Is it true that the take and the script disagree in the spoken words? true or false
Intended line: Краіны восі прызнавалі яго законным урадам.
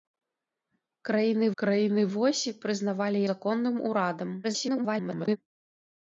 true